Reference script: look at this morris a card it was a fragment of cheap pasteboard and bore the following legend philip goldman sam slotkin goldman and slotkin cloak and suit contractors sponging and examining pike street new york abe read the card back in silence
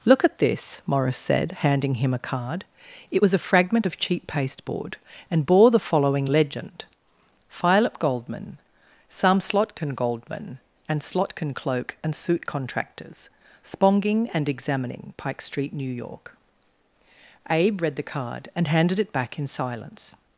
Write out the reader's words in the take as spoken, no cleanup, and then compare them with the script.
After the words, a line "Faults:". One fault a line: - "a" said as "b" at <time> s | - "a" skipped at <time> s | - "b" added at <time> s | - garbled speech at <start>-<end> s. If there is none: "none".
look at this morris said handing him a card it was a fragment of cheap pasteboard and bore the following legend philip goldman sam slotkin goldman and slotkin cloak and suit contractors sponging and examining pike street new york abe read the card and handed it back in silence
Faults:
- "said handing him" added at 1.2 s
- "and handed it" added at 18.6 s